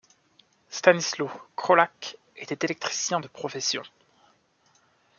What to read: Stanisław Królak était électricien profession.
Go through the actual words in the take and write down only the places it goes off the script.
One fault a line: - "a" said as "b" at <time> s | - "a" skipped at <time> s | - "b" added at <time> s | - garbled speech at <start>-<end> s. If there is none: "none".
- "de" added at 3.2 s